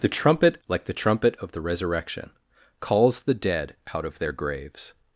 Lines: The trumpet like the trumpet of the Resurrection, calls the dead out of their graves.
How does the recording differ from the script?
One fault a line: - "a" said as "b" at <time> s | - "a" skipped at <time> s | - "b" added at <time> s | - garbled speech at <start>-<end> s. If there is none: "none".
none